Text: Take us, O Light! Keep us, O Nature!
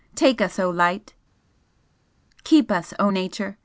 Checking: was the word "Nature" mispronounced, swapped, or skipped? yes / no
no